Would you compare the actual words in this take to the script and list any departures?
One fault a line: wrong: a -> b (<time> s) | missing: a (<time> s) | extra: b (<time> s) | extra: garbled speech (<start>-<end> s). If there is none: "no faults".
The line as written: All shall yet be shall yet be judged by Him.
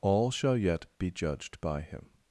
missing: shall yet be (1.1 s)